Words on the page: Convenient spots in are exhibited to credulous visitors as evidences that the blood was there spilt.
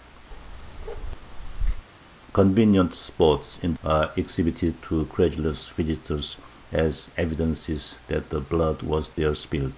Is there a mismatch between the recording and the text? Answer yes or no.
no